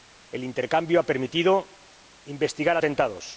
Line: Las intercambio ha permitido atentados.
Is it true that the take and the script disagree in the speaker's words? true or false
true